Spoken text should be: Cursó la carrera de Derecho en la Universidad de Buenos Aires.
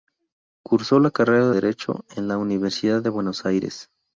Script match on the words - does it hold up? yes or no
no